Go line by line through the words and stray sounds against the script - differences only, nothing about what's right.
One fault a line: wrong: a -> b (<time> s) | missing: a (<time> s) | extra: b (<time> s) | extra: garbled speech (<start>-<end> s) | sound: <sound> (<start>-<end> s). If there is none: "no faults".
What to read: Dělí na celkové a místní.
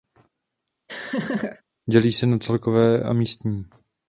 sound: laugh (0.9-1.6 s)
extra: se (2.1 s)